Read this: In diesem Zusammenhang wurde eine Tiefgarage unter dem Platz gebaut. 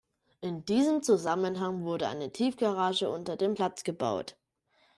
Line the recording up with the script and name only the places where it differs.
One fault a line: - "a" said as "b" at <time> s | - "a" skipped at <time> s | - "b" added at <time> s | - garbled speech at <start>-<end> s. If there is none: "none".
none